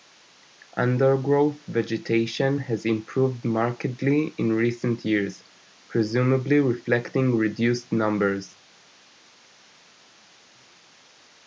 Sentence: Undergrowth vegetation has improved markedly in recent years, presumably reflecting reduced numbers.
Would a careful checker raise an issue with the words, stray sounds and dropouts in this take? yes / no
no